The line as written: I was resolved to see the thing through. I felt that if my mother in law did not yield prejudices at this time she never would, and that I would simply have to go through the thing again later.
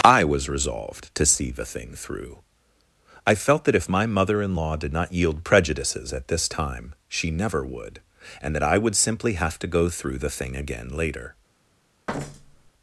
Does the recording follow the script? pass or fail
pass